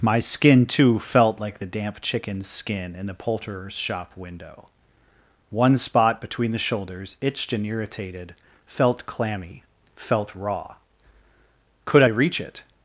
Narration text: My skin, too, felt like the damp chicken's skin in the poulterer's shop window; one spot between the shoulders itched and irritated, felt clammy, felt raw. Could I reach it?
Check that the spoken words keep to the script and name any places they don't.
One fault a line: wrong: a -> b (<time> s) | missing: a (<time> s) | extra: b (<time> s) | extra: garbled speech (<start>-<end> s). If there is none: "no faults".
no faults